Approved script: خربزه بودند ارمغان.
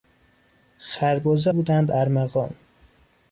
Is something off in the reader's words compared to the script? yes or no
no